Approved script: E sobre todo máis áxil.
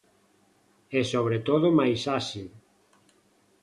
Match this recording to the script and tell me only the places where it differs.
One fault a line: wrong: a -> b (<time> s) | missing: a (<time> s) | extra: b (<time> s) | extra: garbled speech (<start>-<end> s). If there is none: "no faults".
no faults